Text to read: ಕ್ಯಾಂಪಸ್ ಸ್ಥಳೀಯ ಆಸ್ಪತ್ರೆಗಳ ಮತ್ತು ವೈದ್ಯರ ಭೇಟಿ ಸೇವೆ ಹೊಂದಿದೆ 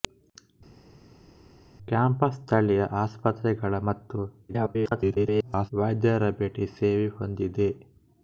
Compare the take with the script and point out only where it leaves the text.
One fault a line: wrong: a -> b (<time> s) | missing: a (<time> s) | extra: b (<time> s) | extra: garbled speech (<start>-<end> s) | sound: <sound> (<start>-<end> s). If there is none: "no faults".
extra: garbled speech (4.5-5.7 s)